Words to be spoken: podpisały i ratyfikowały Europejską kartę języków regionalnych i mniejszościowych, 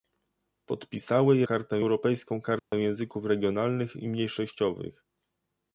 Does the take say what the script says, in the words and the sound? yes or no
no